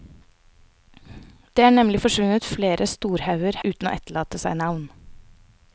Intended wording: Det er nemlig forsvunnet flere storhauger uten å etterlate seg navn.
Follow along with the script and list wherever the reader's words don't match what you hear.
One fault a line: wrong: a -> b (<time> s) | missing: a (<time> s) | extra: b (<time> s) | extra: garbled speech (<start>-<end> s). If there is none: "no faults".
no faults